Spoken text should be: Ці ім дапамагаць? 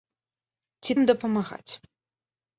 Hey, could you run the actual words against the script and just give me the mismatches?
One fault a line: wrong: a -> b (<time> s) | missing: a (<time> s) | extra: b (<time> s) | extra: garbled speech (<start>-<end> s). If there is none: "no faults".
no faults